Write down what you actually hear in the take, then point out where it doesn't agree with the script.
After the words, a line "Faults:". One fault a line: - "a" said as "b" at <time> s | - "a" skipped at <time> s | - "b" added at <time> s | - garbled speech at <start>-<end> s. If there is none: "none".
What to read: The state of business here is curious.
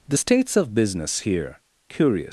The states of business here curious.
Faults:
- "state" said as "states" at 0.1 s
- "is" skipped at 1.6 s